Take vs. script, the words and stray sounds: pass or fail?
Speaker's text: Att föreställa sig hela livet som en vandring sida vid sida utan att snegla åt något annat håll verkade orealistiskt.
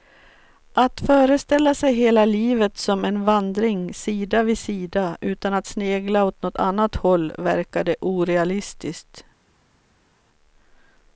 pass